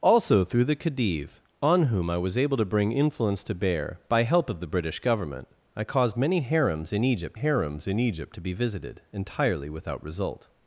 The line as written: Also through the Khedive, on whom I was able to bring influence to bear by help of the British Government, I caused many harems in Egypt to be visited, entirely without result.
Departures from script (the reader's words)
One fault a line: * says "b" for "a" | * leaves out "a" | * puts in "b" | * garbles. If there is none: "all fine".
* puts in "harems in Egypt"